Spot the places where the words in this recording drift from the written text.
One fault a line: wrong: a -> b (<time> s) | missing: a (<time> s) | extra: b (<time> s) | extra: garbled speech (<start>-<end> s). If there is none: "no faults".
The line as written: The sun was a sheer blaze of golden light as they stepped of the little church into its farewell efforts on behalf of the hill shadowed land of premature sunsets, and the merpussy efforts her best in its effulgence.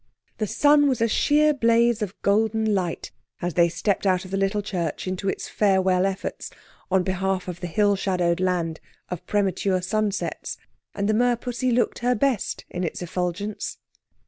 extra: out (4.1 s)
wrong: efforts -> looked (11.7 s)